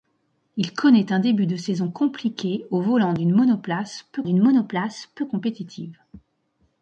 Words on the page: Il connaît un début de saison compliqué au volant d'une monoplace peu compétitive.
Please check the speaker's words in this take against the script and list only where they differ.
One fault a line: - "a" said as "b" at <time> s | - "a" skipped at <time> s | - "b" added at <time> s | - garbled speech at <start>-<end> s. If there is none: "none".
- "d'une monoplace peu" added at 4.2 s